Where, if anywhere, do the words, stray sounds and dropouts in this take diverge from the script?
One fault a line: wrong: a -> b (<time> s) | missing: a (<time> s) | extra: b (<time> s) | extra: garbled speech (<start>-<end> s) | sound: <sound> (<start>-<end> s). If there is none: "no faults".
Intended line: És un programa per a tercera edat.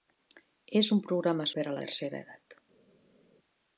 no faults